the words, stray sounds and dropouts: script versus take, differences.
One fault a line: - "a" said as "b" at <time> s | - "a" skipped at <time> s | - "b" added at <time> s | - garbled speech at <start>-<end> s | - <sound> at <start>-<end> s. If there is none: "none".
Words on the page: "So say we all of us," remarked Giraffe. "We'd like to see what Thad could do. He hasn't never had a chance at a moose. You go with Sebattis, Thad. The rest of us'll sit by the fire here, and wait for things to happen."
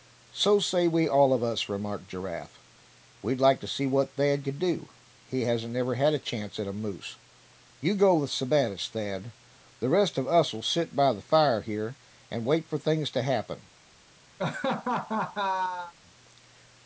- laugh at 14.4-15.9 s